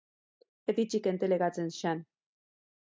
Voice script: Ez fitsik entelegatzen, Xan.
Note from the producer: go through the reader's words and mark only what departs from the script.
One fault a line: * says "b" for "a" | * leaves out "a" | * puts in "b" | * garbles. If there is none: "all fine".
all fine